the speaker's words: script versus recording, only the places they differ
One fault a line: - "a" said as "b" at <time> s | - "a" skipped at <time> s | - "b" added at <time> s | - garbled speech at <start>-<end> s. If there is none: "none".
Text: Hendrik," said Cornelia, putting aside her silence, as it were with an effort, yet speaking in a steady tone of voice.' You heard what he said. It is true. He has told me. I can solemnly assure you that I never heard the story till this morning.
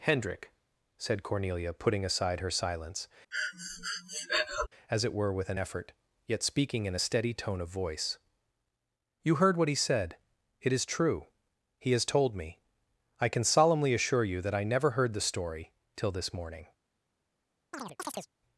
none